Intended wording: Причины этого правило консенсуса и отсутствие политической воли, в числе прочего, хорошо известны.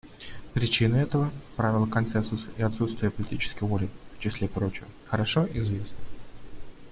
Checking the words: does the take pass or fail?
pass